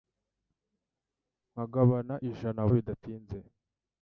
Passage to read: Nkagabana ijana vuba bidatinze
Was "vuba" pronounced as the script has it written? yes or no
no